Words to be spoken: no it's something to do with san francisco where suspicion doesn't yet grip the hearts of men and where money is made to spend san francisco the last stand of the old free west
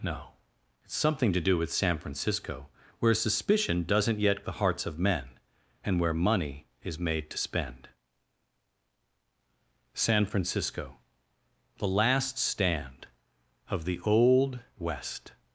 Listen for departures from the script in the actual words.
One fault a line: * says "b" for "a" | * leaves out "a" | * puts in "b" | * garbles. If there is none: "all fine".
* leaves out "grip"
* leaves out "free"